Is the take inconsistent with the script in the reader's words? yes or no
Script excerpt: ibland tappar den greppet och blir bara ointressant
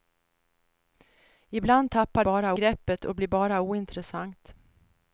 yes